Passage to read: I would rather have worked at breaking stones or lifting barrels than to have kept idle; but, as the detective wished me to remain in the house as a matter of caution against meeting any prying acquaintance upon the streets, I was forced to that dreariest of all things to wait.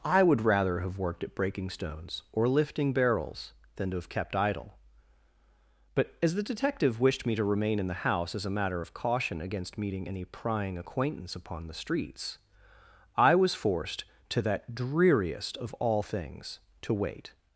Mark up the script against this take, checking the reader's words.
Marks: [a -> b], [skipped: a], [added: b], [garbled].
I would rather have worked at breaking stones or lifting barrels than to have kept idle; but, as the detective wished me to remain in the house as a matter of caution against meeting any prying acquaintance upon the streets, I was forced to that dreariest of all things to wait.